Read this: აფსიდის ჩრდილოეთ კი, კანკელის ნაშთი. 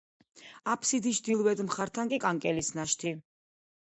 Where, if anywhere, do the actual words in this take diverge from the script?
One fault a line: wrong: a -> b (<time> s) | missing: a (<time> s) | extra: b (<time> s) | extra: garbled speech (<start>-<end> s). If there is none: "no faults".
extra: მხართან (1.7 s)